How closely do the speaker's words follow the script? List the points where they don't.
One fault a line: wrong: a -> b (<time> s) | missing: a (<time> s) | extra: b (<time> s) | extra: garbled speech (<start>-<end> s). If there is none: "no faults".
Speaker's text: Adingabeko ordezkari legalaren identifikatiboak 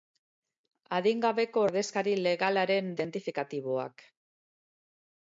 no faults